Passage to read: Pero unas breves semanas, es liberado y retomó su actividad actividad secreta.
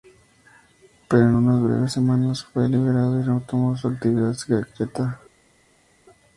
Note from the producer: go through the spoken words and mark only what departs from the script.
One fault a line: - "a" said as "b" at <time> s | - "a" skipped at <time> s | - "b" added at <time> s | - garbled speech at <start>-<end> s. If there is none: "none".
- "en" added at 1.2 s
- "es" said as "fue" at 2.4 s
- "actividad" skipped at 4.3 s